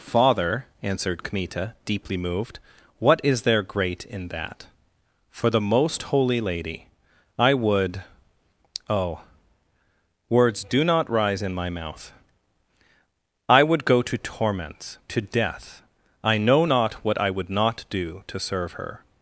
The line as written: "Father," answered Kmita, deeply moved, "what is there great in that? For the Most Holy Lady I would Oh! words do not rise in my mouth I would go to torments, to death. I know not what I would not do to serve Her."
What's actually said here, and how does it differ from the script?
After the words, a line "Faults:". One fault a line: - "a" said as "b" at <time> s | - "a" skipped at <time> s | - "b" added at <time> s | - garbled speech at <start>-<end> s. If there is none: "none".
"Father," answered Kmita, deeply moved, "what is there great in that? For the Most Holy Lady I would Oh! words do not rise in my mouth I would go to torments, to death. I know not what I would not do to serve Her."
Faults:
none